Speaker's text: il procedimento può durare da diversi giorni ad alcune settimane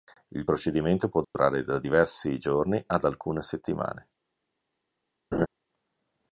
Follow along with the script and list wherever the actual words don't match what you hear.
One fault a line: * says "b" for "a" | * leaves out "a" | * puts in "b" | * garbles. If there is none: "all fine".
all fine